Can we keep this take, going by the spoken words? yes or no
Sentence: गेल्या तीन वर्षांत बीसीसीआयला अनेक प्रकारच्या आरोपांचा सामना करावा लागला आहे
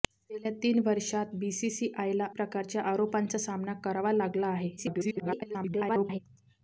no